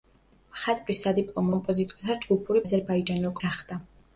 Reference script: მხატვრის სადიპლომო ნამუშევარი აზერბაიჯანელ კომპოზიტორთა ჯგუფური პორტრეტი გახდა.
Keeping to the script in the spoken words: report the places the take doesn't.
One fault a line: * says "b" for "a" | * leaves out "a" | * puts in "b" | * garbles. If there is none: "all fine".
* leaves out "ნამუშევარი აზერბაიჯანელ"
* says "აზერბაიჯანელ" for "პორტრეტი"